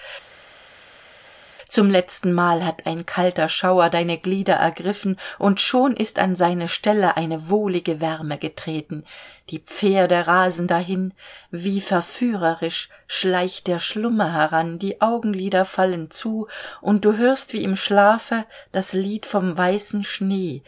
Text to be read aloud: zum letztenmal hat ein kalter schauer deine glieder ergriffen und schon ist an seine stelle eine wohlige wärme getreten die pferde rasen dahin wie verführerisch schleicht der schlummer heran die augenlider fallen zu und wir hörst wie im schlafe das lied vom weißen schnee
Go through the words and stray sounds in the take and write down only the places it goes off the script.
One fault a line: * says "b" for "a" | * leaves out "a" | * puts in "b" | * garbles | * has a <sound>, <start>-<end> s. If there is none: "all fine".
* says "du" for "wir"